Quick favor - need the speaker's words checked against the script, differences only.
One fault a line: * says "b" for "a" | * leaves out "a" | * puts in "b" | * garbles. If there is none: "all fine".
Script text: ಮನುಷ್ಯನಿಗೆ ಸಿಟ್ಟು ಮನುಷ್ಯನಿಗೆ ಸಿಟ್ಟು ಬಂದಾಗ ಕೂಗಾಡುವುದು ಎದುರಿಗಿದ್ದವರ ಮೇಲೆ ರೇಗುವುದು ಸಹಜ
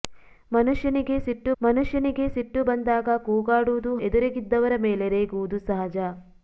all fine